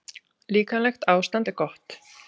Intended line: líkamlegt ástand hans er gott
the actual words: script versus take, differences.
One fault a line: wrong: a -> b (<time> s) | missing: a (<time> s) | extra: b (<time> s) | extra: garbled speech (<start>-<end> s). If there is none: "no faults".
missing: hans (1.5 s)